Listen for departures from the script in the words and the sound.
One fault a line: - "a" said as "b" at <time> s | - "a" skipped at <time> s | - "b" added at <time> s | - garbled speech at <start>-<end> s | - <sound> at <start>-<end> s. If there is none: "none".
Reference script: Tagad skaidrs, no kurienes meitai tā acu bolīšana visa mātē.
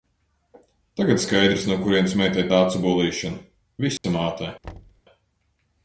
- dropout at 4.0-4.0 s
- thud at 4.6-5.0 s